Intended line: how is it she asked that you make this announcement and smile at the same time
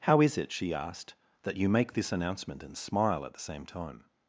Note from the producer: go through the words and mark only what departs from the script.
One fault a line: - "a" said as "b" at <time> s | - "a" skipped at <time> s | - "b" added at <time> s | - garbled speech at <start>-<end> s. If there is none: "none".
none